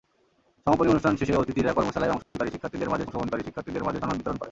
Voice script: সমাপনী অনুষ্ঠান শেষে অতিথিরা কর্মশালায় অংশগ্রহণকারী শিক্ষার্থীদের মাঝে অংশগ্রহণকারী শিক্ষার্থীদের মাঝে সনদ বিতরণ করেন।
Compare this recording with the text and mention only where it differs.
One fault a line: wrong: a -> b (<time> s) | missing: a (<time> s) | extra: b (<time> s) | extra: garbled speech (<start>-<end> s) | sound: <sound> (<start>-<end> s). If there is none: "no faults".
sound: dropout (2.2-2.4 s)